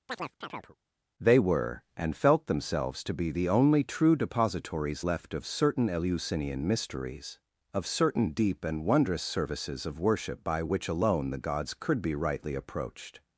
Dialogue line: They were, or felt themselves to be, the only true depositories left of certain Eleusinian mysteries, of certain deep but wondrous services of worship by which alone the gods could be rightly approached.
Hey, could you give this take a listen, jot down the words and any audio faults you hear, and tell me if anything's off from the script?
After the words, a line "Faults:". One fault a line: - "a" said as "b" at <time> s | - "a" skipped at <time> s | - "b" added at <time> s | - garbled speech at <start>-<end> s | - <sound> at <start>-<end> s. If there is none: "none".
They were, and felt themselves to be, the only true depositories left of certain Eleusinian mysteries, of certain deep and wondrous services of worship by which alone the gods could be rightly approached.
Faults:
- chirp at 0.1-0.8 s
- "or" said as "and" at 2.0 s
- "but" said as "and" at 8.6 s